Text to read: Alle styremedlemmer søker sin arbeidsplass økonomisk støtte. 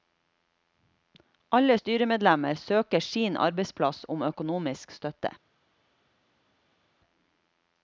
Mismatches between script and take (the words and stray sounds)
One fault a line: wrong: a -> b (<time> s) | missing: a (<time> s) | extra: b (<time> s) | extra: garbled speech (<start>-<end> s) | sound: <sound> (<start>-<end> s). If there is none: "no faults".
extra: om (4.1 s)